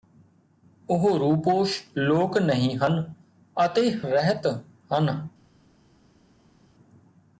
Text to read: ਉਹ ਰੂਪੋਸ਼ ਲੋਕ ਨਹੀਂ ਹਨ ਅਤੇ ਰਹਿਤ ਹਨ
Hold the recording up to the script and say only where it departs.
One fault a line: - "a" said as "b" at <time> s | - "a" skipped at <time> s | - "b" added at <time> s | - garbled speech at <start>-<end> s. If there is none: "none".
none